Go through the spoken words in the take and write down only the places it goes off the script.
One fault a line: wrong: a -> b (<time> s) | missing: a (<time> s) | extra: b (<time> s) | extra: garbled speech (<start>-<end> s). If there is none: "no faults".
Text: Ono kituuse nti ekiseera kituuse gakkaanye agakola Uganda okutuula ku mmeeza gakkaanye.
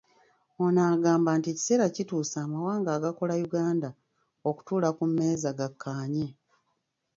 wrong: kituuse -> agamba (0.9 s)
wrong: gakkaanye -> amawanga (2.5 s)